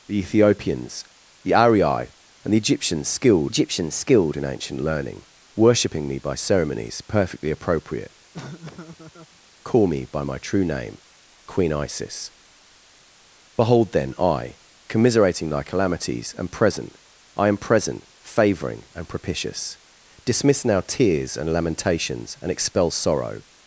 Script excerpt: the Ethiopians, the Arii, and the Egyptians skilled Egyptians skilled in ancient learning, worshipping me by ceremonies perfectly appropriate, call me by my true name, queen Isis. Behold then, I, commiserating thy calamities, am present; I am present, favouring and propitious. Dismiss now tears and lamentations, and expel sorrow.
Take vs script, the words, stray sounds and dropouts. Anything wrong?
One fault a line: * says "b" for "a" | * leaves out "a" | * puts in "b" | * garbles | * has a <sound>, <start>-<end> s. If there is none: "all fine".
* has a laugh, 8.3-9.4 s